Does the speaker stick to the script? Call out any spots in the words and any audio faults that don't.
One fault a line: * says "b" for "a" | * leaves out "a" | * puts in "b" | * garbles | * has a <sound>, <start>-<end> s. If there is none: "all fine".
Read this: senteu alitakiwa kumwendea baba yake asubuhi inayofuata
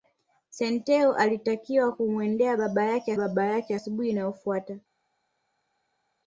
* puts in "baba yake"